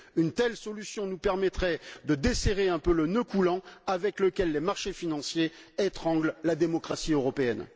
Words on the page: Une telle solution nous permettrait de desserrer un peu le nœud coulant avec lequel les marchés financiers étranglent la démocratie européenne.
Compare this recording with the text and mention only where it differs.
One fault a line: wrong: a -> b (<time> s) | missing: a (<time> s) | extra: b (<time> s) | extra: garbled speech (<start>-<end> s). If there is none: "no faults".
no faults